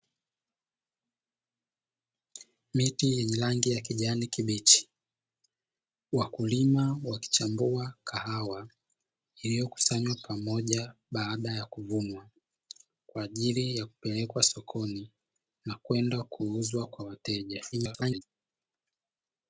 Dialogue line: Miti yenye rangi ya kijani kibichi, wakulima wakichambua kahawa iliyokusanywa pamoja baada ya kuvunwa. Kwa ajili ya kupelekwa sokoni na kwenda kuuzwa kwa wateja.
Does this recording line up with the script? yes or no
no